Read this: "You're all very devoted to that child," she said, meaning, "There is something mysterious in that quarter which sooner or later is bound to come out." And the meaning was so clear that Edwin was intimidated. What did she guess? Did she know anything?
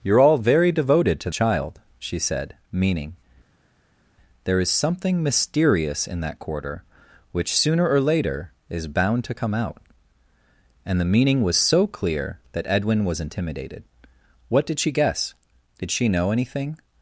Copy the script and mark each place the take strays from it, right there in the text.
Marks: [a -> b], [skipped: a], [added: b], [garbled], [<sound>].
"You're all very devoted to [skipped: that] child," she said, meaning, "There is something mysterious in that quarter which sooner or later is bound to come out." And the meaning was so clear that Edwin was intimidated. What did she guess? Did she know anything?